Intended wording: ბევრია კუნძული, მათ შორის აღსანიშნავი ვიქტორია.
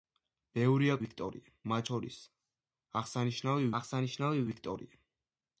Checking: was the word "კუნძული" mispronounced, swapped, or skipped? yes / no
yes